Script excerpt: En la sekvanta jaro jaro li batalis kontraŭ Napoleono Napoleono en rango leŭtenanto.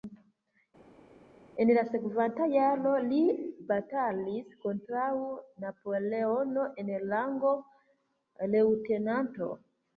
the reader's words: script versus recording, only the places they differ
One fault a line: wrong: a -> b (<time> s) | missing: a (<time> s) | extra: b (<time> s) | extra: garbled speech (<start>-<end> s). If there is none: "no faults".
missing: jaro (2.9 s)
missing: Napoleono (6.7 s)